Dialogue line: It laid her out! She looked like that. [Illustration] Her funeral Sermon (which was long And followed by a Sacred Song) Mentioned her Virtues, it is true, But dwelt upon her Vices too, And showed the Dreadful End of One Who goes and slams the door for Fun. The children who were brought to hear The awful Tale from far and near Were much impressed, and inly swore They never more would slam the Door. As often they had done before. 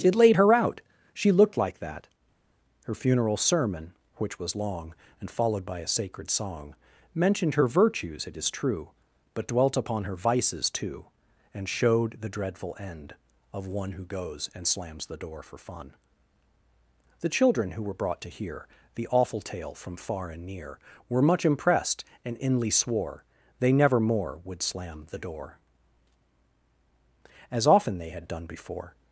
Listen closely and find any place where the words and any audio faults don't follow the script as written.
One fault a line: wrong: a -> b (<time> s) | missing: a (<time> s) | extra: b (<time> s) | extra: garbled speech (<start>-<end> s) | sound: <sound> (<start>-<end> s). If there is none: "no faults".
missing: Illustration (2.1 s)